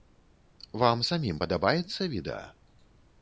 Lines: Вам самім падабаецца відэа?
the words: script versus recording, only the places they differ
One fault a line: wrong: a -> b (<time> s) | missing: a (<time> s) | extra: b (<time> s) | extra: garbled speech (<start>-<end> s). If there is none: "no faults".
no faults